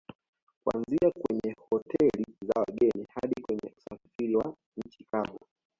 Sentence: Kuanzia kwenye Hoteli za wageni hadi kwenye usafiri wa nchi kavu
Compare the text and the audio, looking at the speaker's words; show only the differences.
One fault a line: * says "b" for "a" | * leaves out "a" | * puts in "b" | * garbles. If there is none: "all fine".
all fine